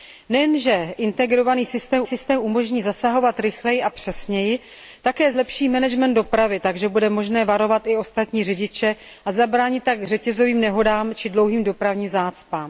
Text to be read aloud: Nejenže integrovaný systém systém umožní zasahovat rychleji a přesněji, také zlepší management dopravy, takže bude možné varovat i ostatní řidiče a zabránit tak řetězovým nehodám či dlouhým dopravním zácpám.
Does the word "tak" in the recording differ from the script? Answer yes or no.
no